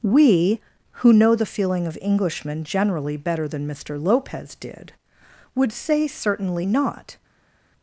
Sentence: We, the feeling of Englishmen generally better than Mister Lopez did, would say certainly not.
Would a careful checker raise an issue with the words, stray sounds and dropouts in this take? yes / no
yes